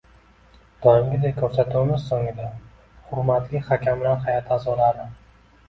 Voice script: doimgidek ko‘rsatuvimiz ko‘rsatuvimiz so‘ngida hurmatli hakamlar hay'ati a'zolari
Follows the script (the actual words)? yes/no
no